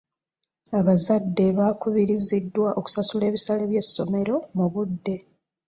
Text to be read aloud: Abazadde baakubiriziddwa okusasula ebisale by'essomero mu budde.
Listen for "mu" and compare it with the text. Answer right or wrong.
right